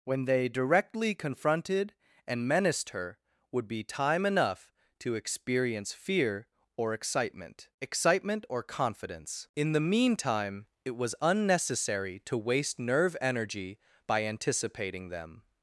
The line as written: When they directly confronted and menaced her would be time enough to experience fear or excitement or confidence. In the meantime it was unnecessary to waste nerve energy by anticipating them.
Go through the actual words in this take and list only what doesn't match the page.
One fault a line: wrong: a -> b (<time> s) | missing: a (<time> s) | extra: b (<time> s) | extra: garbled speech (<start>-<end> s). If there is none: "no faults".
extra: excitement (7.8 s)